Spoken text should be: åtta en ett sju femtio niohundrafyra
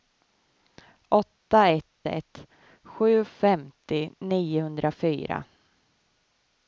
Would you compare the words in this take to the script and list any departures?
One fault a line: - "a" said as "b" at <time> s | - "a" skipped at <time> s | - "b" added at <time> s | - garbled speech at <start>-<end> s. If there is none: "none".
- "en" said as "ett" at 1.7 s